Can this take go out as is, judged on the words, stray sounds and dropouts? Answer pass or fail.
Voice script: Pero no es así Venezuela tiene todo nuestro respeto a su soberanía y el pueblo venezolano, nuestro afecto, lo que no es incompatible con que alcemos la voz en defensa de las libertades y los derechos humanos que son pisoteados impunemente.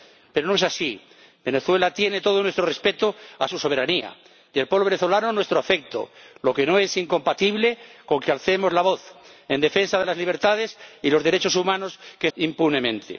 fail